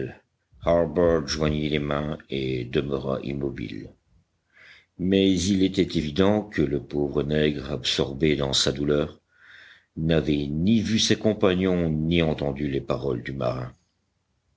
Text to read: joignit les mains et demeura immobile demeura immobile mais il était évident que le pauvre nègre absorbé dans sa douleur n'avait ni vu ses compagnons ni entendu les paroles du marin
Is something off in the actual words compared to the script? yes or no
yes